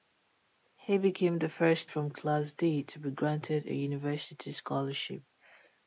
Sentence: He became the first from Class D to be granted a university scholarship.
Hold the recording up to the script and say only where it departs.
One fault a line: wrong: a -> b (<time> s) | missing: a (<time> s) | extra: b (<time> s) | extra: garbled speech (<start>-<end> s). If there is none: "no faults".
no faults